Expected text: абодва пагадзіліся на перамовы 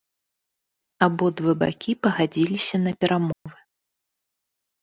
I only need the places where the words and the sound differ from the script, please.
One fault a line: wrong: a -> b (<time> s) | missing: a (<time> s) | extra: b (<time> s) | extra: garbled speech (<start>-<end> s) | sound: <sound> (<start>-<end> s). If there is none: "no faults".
extra: бакі (1.6 s)
sound: dropout (3.3-3.5 s)